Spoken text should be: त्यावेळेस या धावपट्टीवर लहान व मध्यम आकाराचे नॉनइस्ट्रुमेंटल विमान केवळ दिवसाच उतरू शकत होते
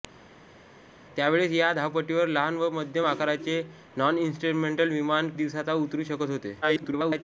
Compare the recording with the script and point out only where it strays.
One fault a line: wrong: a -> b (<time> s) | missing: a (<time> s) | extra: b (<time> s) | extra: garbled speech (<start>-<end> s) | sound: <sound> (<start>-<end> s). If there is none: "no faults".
missing: केवळ (5.3 s)
extra: garbled speech (6.6-7.2 s)